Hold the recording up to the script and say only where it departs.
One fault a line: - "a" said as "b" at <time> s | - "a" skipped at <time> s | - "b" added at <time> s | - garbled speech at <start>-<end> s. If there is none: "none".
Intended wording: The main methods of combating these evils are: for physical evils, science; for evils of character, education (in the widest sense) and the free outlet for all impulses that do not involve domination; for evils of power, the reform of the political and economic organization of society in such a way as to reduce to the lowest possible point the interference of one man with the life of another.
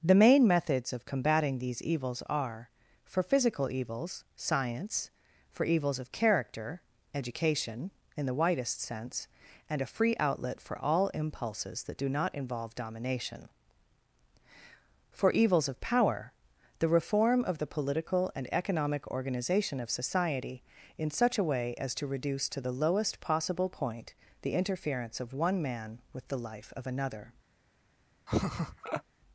- "the" said as "a" at 9.8 s